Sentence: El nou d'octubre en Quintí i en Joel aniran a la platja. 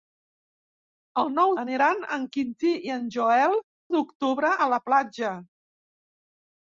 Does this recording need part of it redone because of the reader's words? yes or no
yes